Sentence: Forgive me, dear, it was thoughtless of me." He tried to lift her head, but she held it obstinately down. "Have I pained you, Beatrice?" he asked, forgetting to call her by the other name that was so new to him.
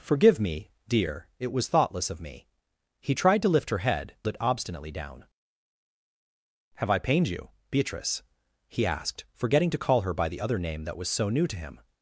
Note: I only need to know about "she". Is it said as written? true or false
false